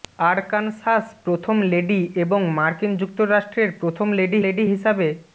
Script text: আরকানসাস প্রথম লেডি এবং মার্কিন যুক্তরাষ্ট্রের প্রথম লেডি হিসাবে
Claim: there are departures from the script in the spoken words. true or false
true